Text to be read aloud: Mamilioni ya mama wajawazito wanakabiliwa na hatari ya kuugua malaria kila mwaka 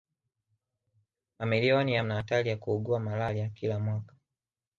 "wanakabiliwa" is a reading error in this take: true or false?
true